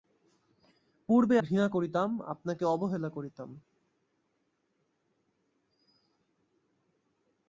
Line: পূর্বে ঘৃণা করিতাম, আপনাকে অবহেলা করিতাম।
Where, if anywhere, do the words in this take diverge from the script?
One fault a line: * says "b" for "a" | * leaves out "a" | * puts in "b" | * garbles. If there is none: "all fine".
all fine